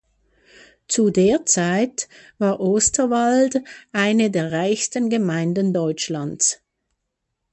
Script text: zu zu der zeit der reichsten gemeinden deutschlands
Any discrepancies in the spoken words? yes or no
yes